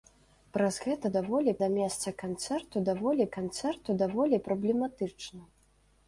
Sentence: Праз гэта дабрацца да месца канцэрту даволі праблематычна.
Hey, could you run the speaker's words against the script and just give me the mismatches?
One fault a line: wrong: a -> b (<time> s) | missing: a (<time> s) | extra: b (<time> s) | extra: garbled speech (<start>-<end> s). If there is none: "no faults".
wrong: дабрацца -> даволі (1.2 s)
extra: канцэрту даволі (3.4 s)